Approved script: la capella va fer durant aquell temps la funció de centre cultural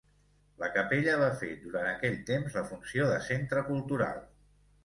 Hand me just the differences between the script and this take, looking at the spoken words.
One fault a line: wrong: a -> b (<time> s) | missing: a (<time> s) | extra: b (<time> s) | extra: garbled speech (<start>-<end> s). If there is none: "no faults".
no faults